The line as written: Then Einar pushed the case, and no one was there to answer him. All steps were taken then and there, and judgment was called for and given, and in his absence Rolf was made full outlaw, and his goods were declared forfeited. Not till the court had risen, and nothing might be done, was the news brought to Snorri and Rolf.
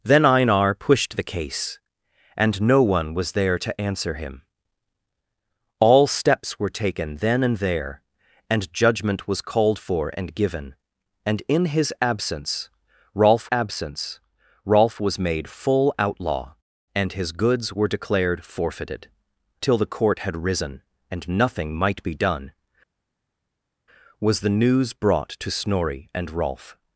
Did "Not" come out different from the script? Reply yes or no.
yes